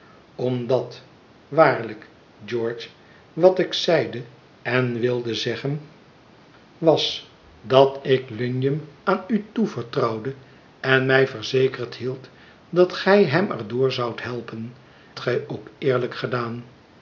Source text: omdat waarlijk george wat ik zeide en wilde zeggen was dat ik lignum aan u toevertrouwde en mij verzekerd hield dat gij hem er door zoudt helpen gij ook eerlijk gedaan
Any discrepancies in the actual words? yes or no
no